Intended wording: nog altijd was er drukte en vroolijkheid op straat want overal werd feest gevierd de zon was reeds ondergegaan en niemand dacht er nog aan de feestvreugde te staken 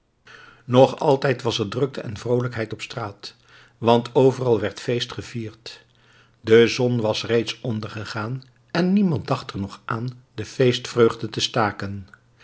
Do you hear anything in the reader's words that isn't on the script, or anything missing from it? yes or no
no